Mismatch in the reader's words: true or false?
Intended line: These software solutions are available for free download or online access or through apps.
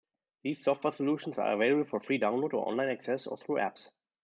false